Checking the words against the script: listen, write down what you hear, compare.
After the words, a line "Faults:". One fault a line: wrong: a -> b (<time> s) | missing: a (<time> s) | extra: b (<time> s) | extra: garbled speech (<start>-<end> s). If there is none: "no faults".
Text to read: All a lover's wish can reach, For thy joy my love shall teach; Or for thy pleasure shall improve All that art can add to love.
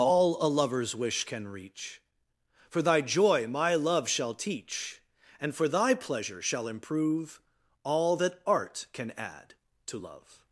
All a lover's wish can reach, For thy joy my love shall teach; And for thy pleasure shall improve All that art can add to love.
Faults:
wrong: Or -> And (5.4 s)